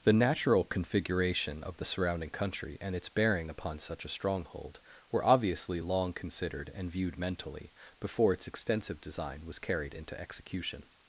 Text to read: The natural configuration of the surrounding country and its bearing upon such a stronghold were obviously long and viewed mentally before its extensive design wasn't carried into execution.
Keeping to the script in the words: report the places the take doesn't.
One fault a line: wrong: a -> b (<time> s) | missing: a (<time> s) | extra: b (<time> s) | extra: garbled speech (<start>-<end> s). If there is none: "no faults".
extra: considered (6.1 s)
wrong: wasn't -> was (9.5 s)